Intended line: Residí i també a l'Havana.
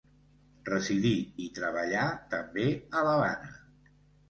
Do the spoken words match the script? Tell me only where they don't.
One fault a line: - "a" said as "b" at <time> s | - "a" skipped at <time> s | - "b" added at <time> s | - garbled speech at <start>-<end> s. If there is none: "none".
- "treballà" added at 1.6 s